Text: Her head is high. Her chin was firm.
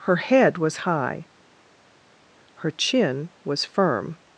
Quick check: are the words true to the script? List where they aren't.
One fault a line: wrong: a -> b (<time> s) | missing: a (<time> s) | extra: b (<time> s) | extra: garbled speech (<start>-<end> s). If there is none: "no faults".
wrong: is -> was (0.6 s)